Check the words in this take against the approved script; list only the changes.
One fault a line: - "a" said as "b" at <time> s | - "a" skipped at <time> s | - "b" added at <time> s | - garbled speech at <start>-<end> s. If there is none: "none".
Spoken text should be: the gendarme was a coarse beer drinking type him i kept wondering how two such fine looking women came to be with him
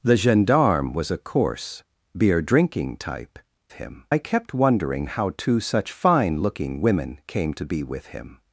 none